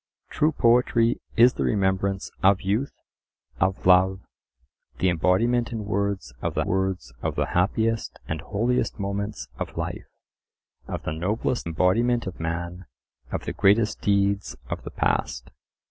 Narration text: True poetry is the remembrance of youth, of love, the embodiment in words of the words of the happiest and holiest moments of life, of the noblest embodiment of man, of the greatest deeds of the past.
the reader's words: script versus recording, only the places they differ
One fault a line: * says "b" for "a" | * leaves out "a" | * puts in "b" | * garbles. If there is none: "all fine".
all fine